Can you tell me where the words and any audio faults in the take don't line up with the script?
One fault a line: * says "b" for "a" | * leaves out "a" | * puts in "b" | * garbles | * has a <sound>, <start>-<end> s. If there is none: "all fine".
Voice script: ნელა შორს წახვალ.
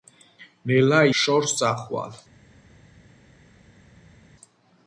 all fine